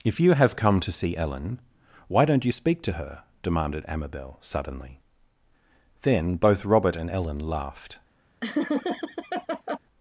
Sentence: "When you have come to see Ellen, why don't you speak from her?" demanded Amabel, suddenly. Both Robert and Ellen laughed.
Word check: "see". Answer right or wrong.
right